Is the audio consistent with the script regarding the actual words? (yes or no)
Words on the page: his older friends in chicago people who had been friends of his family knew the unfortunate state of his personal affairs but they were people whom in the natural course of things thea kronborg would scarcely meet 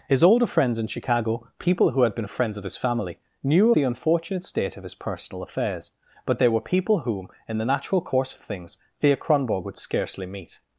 yes